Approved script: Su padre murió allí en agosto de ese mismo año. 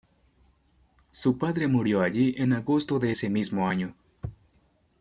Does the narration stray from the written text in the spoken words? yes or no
no